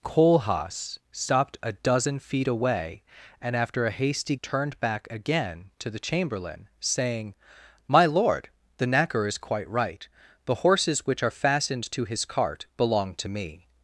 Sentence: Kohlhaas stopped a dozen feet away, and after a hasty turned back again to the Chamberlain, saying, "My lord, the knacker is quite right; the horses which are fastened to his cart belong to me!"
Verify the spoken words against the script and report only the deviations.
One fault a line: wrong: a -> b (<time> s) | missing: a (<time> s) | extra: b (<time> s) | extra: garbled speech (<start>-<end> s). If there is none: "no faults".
no faults